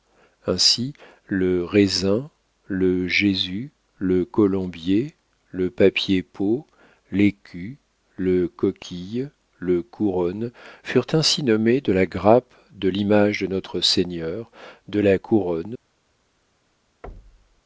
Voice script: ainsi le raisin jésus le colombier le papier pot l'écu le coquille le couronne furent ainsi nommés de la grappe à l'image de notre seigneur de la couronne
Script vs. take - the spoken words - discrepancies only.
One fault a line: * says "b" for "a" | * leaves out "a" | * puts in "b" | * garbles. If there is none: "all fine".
* puts in "le"
* says "de" for "à"